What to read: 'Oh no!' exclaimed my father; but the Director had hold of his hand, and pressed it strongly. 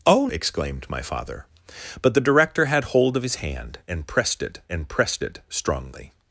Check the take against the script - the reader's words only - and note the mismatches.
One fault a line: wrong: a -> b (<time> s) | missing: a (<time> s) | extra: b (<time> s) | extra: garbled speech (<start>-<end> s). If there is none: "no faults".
missing: no (0.3 s)
extra: and pressed it (4.7 s)